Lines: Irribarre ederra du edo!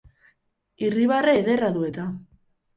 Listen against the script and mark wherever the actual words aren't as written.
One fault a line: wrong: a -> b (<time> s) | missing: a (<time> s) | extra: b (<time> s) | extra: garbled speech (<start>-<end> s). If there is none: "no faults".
wrong: edo -> eta (1.9 s)